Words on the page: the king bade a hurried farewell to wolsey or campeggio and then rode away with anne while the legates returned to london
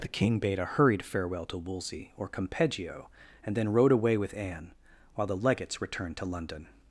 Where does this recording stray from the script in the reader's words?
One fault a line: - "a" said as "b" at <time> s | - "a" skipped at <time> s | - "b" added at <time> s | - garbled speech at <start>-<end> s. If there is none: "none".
none